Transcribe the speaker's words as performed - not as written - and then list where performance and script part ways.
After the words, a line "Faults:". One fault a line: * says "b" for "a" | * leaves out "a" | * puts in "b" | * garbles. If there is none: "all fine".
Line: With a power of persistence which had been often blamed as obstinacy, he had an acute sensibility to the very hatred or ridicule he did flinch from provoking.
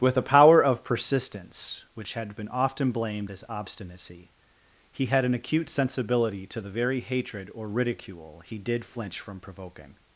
With a power of persistence which had been often blamed as obstinacy, he had an acute sensibility to the very hatred or ridicule he did flinch from provoking.
Faults:
all fine